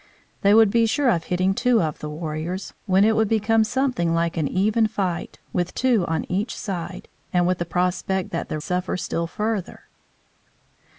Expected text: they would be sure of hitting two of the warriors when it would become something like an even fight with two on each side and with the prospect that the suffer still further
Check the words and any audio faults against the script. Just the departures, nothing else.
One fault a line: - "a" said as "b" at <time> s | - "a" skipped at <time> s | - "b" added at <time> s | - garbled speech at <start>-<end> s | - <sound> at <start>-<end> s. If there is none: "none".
none